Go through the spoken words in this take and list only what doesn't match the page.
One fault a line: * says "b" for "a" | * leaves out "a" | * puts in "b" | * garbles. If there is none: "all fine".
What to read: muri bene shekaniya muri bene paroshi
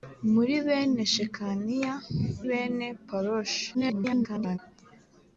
* leaves out "muri"
* garbles